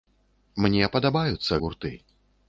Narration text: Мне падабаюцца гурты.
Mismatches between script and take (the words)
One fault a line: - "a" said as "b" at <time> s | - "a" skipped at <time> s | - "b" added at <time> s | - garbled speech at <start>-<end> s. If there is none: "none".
none